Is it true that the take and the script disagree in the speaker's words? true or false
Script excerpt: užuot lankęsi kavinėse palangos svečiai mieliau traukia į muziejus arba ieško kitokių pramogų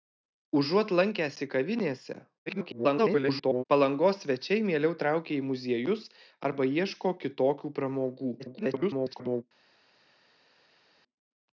true